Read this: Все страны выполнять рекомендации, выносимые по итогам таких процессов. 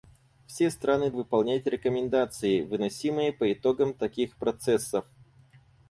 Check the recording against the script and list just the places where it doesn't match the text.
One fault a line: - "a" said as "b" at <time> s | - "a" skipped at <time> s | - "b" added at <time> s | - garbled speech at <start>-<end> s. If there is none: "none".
none